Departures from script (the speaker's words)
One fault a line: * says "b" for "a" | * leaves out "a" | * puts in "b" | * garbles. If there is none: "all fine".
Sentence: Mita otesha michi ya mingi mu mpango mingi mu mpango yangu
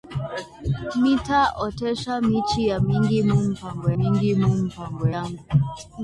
all fine